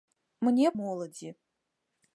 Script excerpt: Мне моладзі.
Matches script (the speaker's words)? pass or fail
pass